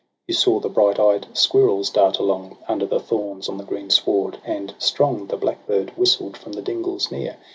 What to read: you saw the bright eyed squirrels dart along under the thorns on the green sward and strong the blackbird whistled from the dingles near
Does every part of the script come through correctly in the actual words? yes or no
yes